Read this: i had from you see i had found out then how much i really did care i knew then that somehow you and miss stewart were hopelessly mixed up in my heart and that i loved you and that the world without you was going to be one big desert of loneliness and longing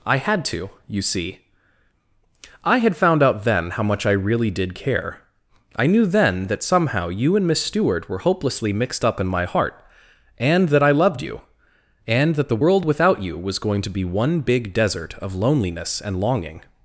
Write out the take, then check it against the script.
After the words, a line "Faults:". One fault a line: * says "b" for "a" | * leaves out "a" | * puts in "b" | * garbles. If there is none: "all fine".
i had to you see i had found out then how much i really did care i knew then that somehow you and miss stewart were hopelessly mixed up in my heart and that i loved you and that the world without you was going to be one big desert of loneliness and longing
Faults:
* says "to" for "from"